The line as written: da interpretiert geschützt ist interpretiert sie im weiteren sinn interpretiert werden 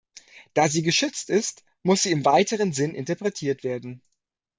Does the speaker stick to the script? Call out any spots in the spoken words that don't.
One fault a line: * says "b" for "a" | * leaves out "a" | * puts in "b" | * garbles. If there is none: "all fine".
* says "sie" for "interpretiert"
* says "muss" for "interpretiert"